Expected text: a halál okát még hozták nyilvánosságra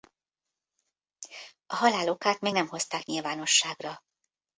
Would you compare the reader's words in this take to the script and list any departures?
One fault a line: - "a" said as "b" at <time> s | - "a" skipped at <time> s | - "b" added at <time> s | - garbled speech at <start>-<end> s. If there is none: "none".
- "nem" added at 2.5 s